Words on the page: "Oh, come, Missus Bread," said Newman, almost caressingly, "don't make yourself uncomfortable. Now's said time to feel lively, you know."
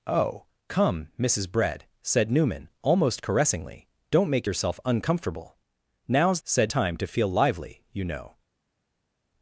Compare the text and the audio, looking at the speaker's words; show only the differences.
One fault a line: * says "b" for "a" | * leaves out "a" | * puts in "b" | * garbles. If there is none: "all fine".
all fine